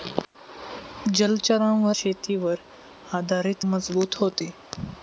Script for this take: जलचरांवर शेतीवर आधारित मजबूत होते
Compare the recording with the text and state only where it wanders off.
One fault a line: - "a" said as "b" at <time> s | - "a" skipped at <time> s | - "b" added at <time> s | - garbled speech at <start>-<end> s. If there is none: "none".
none